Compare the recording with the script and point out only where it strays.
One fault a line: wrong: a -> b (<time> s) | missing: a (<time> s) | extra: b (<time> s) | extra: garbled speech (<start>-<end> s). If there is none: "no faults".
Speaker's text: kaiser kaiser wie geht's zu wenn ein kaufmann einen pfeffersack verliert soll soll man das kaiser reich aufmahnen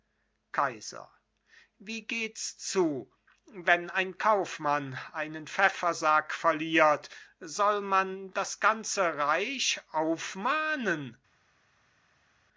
missing: kaiser (1.1 s)
missing: soll (7.8 s)
wrong: kaiser -> ganze (8.6 s)